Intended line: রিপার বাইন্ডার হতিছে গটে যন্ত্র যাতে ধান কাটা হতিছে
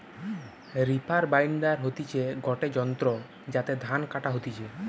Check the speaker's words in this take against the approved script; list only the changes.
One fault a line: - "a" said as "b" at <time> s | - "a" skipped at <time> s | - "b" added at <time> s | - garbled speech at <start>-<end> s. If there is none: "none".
none